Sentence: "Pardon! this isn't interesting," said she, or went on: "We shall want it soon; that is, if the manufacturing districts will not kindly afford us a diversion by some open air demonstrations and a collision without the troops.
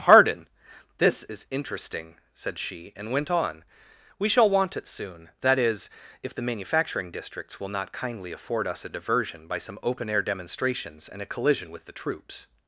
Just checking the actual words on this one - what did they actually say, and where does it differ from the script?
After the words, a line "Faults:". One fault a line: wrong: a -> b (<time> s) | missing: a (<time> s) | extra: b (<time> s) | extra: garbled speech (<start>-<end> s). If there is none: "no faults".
"Pardon! this is interesting," said she, and went on: "We shall want it soon; that is, if the manufacturing districts will not kindly afford us a diversion by some open air demonstrations and a collision with the troops.
Faults:
wrong: isn't -> is (1.2 s)
wrong: or -> and (3.0 s)
wrong: without -> with (11.7 s)